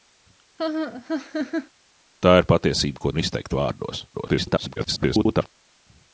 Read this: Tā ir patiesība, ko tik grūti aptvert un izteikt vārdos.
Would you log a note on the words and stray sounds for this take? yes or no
yes